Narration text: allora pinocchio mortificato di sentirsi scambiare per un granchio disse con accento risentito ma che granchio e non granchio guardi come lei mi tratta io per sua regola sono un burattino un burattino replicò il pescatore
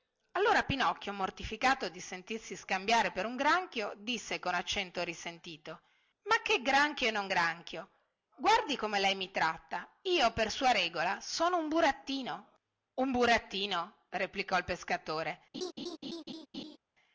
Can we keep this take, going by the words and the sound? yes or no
no